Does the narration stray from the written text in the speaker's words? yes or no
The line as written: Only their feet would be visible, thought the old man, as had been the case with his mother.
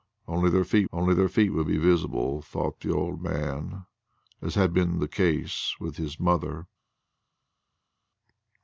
yes